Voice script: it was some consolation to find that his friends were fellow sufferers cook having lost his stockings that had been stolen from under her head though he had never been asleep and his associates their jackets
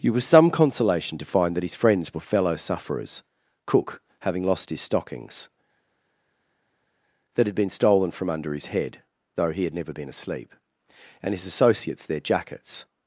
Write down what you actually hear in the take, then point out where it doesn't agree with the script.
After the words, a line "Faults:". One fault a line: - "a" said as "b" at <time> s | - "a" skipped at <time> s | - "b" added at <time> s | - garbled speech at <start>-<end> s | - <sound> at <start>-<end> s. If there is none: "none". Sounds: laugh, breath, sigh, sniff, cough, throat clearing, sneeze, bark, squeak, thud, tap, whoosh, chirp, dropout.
it was some consolation to find that his friends were fellow sufferers cook having lost his stockings that had been stolen from under his head though he had never been asleep and his associates their jackets
Faults:
- "her" said as "his" at 8.5 s